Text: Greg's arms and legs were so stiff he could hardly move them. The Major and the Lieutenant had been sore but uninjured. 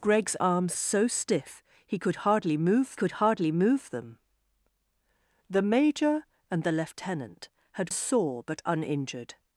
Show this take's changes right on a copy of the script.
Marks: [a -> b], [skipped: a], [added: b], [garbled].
Greg's arms [skipped: and legs were] so stiff he could hardly move [added: could hardly move] them. The Major and the Lieutenant had [skipped: been] sore but uninjured.